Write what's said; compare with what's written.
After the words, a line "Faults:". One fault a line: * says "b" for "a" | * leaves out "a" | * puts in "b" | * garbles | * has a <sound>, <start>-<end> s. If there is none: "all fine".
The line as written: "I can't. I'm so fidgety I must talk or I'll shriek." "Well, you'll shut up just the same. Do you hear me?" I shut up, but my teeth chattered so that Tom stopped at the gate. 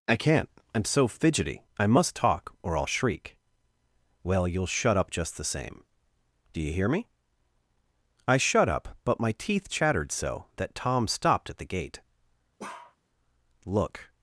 "I can't. I'm so fidgety I must talk or I'll shriek." "Well, you'll shut up just the same. Do you hear me?" I shut up, but my teeth chattered so that Tom stopped at the gate. "Look
Faults:
* has a bark, 12.6-13.0 s
* puts in "Look"